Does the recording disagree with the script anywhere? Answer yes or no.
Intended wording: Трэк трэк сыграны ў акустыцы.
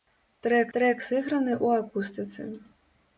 no